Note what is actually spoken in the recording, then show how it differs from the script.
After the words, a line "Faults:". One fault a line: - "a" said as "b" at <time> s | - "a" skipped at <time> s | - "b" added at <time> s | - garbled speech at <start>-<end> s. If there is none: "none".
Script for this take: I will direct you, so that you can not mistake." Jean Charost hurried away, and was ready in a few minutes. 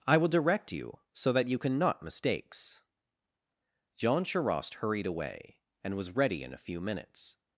I will direct you, so that you can not mistakes." Jean Charost hurried away, and was ready in a few minutes.
Faults:
- "mistake" said as "mistakes" at 2.0 s